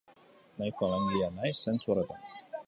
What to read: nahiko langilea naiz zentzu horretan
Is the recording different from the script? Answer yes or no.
no